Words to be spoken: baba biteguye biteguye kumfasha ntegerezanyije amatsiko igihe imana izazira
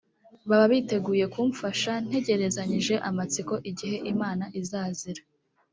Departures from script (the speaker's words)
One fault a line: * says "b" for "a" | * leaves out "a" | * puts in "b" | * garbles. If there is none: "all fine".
* leaves out "biteguye"